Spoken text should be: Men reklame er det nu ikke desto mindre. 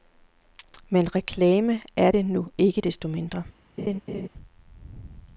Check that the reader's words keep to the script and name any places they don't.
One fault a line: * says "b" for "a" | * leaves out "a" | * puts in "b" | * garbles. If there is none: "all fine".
all fine